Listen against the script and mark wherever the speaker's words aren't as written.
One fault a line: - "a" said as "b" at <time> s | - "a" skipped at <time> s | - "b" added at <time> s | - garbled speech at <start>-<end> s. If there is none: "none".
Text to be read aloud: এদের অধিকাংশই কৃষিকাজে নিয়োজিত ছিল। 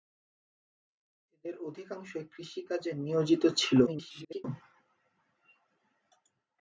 - garbled speech at 3.9-4.4 s